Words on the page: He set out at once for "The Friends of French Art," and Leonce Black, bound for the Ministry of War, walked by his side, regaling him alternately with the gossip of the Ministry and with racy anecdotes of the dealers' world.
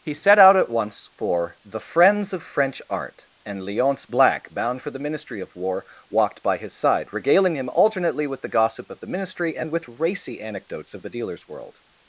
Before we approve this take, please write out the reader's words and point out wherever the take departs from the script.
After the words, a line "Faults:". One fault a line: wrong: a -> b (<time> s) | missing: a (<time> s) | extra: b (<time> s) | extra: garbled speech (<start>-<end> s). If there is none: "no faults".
He set out at once for "The Friends of French Art," and Leonce Black, bound for the Ministry of War, walked by his side, regaling him alternately with the gossip of the Ministry and with racy anecdotes of the dealers' world.
Faults:
no faults